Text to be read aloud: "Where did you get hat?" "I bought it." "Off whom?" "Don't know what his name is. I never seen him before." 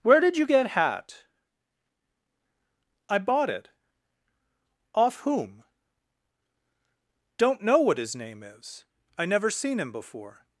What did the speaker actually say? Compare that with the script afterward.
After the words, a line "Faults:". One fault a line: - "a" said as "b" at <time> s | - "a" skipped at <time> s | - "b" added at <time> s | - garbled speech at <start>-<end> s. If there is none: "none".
"Where did you get hat?" "I bought it." "Off whom?" "Don't know what his name is. I never seen him before."
Faults:
none